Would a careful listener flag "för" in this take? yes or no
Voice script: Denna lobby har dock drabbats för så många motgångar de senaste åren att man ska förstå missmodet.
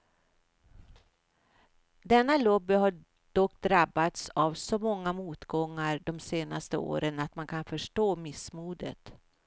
yes